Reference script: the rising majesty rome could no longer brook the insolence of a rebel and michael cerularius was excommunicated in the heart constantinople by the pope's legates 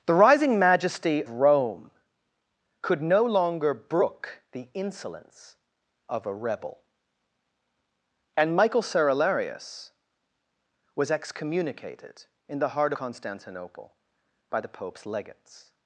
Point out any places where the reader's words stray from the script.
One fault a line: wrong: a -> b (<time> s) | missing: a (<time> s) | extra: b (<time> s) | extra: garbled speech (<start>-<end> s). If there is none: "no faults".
no faults